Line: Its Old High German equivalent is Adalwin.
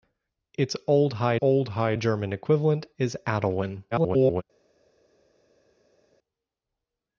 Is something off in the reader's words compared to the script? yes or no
yes